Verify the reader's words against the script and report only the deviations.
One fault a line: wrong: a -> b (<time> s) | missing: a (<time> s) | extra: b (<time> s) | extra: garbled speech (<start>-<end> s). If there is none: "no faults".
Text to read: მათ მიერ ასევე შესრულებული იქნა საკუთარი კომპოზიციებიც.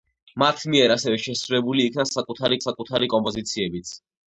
extra: საკუთარი (2.6 s)